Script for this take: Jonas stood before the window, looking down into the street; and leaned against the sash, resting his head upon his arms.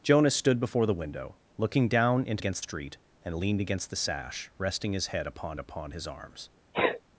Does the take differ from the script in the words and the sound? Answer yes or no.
yes